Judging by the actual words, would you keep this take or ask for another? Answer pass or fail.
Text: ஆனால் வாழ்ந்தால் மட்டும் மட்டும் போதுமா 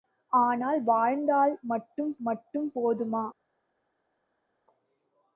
pass